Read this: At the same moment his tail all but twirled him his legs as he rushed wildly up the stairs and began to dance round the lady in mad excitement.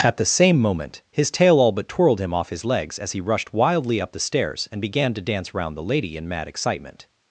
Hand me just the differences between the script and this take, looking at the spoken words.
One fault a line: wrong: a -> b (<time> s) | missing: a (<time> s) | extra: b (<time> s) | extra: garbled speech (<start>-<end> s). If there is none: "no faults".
extra: off (2.3 s)